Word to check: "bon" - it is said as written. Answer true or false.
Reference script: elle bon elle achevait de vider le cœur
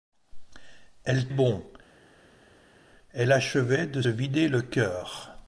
true